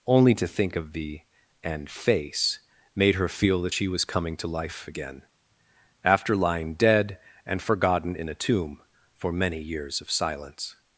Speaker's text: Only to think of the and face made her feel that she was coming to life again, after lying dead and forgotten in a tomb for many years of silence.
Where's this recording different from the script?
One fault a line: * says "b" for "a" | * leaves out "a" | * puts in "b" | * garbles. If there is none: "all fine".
all fine